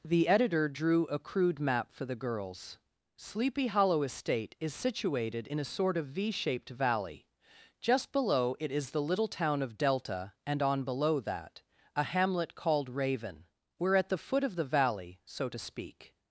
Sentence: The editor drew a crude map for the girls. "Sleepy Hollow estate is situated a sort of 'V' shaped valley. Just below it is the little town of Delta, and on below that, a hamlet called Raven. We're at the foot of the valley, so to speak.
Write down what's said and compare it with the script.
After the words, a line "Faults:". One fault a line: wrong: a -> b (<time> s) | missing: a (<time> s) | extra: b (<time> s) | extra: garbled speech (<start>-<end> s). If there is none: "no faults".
The editor drew a crude map for the girls. "Sleepy Hollow estate is situated in a sort of 'V' shaped valley. Just below it is the little town of Delta, and on below that, a hamlet called Raven. We're at the foot of the valley, so to speak.
Faults:
extra: in (5.5 s)